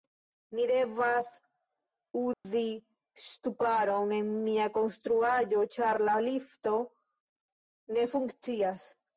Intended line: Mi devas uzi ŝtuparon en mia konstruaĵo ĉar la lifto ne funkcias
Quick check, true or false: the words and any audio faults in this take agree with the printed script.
false